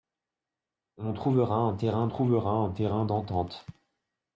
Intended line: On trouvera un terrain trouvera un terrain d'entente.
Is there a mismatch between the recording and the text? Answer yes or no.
no